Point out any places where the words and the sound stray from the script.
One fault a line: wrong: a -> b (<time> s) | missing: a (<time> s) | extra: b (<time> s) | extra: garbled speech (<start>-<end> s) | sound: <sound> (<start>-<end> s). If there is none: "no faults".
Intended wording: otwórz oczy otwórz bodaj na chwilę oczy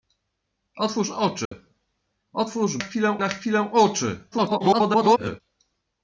sound: dropout (1.5-1.5 s)
wrong: bodaj -> chwilę (2.8 s)
extra: garbled speech (4.3-5.4 s)